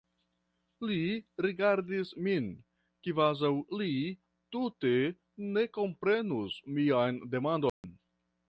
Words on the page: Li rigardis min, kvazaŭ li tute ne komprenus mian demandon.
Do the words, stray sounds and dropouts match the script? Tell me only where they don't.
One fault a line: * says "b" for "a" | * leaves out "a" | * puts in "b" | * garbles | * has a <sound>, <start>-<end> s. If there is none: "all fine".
* has a dropout, 7.7-7.8 s